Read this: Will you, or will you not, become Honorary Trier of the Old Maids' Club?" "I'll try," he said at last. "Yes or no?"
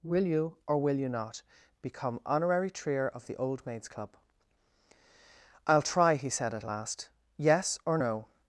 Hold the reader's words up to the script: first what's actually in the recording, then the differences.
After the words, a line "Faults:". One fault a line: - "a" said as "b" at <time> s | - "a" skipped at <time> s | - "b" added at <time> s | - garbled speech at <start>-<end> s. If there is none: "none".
Will you, or will you not, become Honorary Trier of the Old Maids' Club?" "I'll try," he said at last. "Yes or no?"
Faults:
none